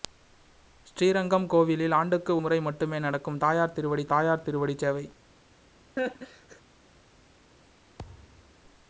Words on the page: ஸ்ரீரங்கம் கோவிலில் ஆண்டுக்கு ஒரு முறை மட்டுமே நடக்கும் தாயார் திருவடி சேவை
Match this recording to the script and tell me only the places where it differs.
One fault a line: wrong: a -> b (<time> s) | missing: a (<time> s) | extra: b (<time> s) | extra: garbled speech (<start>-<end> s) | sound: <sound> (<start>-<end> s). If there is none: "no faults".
missing: ஒரு (2.4 s)
extra: தாயார் திருவடி (4.1 s)
sound: laugh (6.0-6.6 s)
sound: thud (8.0-8.6 s)